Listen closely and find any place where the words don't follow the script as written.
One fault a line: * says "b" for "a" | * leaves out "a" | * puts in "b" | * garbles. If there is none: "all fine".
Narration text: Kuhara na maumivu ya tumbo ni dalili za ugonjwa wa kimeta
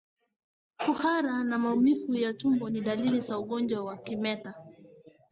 all fine